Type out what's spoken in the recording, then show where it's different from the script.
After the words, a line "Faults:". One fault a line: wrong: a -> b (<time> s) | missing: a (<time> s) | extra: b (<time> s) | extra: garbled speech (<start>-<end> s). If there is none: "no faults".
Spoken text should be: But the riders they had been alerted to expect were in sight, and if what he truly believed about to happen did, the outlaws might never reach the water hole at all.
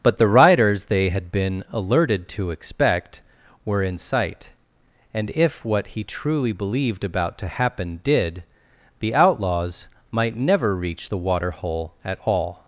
But the riders they had been alerted to expect were in sight, and if what he truly believed about to happen did, the outlaws might never reach the water hole at all.
Faults:
no faults